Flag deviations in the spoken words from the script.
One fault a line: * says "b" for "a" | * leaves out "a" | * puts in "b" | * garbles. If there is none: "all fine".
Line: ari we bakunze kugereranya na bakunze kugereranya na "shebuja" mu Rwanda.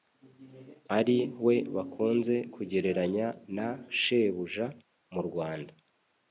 * leaves out "bakunze kugereranya na"